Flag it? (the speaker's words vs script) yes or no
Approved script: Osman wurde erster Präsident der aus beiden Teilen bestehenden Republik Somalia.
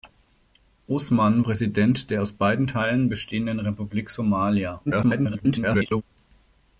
yes